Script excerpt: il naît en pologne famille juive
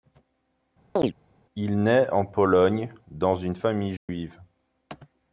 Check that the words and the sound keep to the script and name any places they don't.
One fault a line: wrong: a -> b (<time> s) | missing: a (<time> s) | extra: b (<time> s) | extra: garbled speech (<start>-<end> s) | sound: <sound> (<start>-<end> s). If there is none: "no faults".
sound: chirp (0.9-1.1 s)
extra: dans une (3.1 s)
sound: dropout (4.0-4.1 s)